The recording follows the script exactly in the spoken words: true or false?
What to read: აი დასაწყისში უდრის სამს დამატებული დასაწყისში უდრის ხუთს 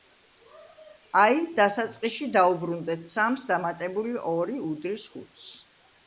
false